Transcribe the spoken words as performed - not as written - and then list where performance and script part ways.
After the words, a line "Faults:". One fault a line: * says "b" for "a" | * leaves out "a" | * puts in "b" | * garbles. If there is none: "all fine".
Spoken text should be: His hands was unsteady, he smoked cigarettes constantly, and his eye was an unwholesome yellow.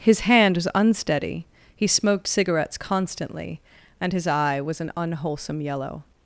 His hand was unsteady, he smoked cigarettes constantly, and his eye was an unwholesome yellow.
Faults:
* says "hand" for "hands"